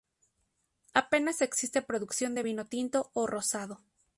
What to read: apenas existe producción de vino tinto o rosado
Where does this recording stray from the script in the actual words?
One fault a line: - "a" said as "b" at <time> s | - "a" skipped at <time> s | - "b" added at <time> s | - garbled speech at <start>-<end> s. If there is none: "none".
none